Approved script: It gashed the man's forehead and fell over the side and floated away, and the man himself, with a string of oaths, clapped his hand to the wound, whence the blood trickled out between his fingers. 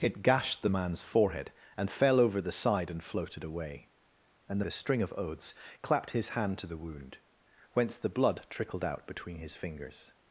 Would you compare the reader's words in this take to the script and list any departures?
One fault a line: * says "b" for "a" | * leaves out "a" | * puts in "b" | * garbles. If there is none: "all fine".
* leaves out "man himself with"